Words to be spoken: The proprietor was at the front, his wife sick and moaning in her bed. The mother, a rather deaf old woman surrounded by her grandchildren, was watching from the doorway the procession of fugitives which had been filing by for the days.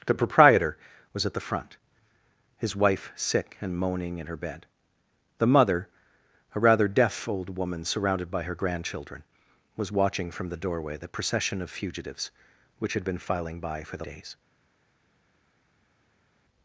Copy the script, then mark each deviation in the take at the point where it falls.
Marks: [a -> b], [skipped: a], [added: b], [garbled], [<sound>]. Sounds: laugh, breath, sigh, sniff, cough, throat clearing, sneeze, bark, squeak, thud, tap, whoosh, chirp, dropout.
The proprietor was at the front, his wife sick and moaning in her bed. The mother, a rather deaf old woman surrounded by her grandchildren, was watching from the doorway the procession of fugitives which had been filing by for the days.